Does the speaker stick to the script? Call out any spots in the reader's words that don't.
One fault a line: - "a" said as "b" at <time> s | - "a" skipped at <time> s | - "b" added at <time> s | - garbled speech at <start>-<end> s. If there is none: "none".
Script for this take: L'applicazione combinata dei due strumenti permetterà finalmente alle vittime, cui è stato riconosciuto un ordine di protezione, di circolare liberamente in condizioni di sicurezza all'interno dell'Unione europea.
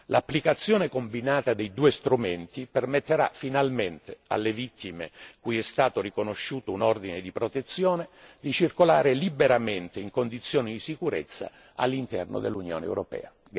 none